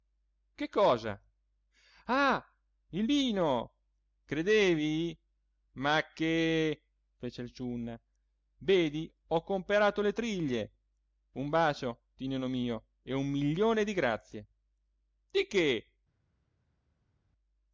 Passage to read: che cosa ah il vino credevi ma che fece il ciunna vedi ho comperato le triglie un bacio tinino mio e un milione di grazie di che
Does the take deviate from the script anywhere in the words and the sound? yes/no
no